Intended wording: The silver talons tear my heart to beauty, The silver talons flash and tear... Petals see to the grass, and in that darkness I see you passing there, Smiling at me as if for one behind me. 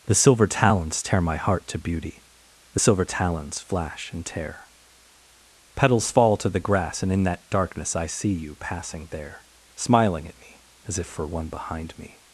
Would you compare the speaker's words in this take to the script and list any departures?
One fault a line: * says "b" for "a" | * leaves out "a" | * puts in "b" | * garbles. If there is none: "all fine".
* says "fall" for "see"